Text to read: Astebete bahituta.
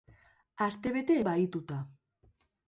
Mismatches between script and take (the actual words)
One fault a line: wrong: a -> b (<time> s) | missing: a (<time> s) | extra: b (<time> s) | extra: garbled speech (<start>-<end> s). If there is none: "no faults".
no faults